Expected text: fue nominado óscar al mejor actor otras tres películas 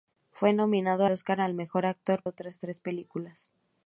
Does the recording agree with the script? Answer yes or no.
yes